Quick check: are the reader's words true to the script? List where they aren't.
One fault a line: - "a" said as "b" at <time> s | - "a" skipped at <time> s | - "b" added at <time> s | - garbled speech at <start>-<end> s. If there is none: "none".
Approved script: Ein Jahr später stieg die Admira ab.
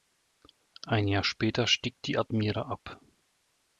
none